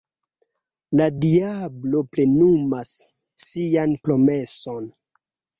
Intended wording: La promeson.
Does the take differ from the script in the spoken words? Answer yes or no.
yes